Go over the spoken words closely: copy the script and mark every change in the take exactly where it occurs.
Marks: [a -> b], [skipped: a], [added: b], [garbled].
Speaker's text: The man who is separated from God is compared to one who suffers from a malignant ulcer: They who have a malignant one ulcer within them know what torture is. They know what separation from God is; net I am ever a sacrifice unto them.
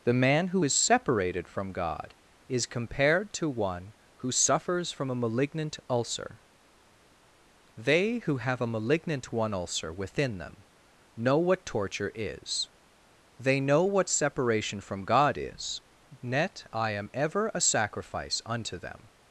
The man who is separated from God is compared to one who suffers from a malignant ulcer: They who have a malignant one ulcer within them know what torture is. They know what separation from God is; net I am ever a sacrifice unto them.